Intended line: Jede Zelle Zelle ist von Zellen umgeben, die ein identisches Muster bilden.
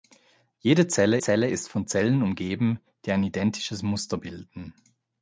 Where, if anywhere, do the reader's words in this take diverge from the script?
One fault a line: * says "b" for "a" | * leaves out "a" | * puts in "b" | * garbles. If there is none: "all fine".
all fine